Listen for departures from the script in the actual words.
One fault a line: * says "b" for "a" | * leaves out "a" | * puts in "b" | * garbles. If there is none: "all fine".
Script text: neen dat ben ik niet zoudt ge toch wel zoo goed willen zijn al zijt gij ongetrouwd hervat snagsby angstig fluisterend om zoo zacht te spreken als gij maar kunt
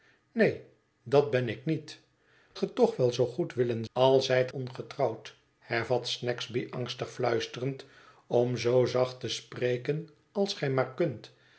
* leaves out "zoudt"
* leaves out "zijn"
* leaves out "gij"